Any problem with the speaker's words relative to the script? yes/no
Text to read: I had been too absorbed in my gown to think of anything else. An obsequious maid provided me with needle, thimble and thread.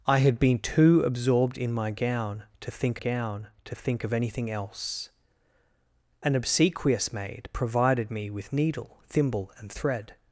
yes